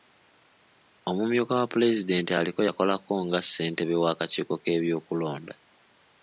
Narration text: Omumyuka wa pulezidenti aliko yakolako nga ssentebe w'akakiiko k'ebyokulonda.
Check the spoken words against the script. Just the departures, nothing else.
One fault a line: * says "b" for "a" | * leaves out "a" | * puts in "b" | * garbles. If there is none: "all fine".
all fine